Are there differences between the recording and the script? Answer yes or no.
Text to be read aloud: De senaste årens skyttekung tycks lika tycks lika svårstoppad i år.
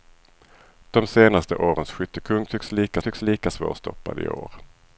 no